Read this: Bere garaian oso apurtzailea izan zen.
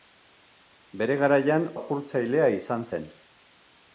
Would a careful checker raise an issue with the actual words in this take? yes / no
yes